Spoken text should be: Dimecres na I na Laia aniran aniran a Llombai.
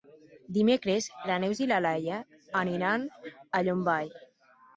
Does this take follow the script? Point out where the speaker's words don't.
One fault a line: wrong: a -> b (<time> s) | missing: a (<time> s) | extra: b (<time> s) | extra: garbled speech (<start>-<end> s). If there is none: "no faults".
extra: Neus (1.4 s)
missing: aniran (3.1 s)